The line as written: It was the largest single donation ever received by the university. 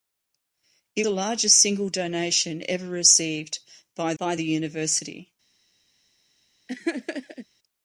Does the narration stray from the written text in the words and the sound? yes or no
yes